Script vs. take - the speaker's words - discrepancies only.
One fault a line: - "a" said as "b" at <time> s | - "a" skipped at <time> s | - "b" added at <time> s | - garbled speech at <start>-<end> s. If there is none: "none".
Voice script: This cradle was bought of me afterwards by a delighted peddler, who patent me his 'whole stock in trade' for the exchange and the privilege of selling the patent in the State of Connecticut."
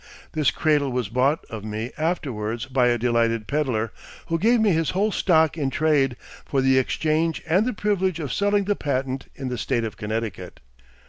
- "patent" said as "gave" at 4.4 s